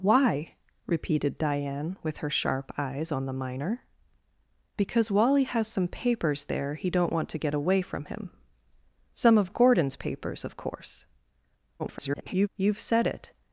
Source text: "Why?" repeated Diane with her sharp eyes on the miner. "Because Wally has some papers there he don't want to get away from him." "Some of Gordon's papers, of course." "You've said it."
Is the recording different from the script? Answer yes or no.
yes